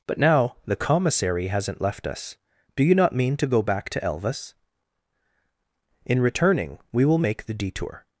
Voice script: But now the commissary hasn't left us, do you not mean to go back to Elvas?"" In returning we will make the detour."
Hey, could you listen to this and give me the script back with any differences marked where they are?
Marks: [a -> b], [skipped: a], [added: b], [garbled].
But now the commissary hasn't left us, do you not mean to go back to Elvas?"" In returning we will make the detour."